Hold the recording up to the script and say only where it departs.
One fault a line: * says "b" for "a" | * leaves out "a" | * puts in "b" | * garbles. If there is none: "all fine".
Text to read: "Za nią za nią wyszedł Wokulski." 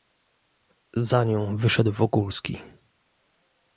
* leaves out "za nią"